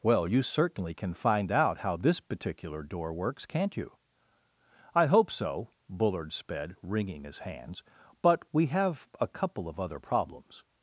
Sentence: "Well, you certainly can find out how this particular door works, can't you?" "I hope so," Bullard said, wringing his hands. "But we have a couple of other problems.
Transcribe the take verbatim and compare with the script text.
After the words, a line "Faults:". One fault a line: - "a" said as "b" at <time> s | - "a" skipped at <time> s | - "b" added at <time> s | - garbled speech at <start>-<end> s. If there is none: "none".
"Well, you certainly can find out how this particular door works, can't you?" "I hope so," Bullard sped, wringing his hands. "But we have a couple of other problems.
Faults:
- "said" said as "sped" at 6.3 s